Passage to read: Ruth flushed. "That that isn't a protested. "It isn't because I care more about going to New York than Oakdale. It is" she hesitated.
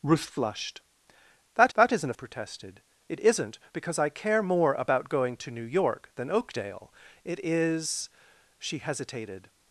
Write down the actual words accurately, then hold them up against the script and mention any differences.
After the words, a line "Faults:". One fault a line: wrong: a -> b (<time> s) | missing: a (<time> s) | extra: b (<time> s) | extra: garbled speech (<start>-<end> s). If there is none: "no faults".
Ruth flushed. "That that isn't a protested. "It isn't because I care more about going to New York than Oakdale. It is" she hesitated.
Faults:
no faults